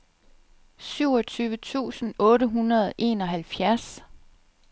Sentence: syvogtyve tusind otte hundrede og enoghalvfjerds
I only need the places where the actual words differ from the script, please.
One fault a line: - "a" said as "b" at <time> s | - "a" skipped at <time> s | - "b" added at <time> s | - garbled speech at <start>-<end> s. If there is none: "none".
none